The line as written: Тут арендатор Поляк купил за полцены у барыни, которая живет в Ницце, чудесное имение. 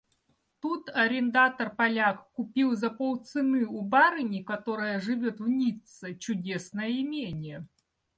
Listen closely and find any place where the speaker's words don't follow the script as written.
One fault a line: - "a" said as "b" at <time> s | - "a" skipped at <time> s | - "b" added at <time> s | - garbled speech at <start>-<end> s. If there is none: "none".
none